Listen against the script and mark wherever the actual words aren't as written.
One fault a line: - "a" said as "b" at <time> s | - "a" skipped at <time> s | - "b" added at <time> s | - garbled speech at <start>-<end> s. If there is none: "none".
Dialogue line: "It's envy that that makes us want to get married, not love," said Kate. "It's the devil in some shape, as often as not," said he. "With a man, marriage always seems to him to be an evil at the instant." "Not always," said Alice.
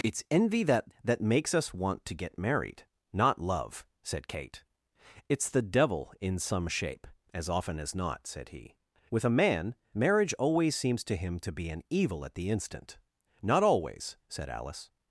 none